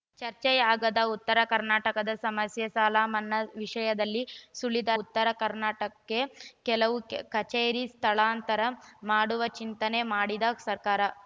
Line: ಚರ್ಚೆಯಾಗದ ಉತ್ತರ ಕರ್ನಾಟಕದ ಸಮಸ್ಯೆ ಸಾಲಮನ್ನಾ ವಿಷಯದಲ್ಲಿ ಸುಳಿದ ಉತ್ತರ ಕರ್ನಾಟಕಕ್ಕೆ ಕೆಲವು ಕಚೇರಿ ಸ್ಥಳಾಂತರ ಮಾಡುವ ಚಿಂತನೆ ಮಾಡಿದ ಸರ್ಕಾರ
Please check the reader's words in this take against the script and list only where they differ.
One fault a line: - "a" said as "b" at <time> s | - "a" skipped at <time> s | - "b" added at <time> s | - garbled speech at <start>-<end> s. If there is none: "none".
none